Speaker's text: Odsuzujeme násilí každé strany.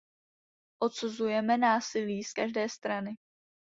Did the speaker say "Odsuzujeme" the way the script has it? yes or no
yes